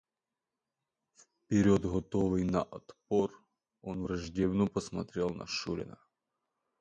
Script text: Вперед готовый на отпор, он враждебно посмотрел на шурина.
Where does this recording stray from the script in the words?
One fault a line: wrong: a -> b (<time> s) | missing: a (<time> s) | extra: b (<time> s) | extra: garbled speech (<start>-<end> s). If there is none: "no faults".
no faults